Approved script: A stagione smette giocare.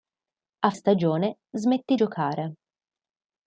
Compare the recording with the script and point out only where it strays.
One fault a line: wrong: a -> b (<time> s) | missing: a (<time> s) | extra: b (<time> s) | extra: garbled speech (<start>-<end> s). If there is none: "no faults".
no faults